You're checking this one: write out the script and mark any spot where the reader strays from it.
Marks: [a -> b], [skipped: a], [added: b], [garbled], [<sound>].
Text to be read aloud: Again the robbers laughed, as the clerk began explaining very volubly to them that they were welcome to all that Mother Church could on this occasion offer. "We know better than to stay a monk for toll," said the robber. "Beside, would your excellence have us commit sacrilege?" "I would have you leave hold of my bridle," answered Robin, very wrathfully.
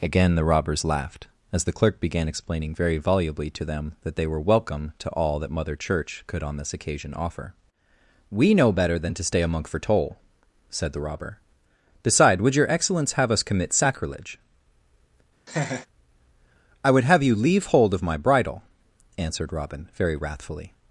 Again the robbers laughed, as the clerk began explaining very volubly to them that they were welcome to all that Mother Church could on this occasion offer. "We know better than to stay a monk for toll," said the robber. "Beside, would your excellence have us commit sacrilege?" [laugh] "I would have you leave hold of my bridle," answered Robin, very wrathfully.